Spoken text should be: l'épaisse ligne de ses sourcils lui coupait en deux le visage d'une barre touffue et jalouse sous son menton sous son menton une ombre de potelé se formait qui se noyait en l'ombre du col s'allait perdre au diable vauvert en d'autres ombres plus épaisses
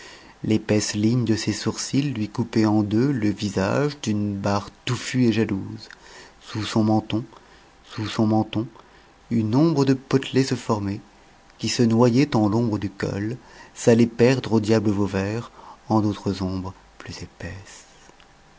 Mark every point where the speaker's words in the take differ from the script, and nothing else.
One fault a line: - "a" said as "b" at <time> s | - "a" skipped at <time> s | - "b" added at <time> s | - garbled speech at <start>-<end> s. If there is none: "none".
none